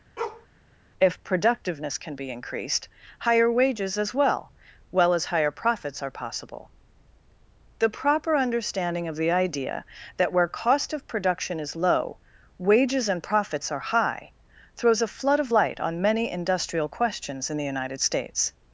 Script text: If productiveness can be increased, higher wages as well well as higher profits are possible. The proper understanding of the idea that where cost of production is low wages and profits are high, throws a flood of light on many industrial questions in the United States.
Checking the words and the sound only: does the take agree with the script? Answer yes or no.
no